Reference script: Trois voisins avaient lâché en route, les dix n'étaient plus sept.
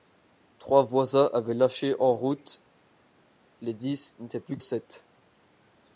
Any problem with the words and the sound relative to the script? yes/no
no